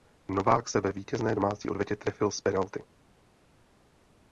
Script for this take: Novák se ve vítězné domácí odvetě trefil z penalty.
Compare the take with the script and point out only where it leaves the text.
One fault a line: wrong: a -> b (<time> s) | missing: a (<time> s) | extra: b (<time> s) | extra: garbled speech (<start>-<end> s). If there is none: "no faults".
no faults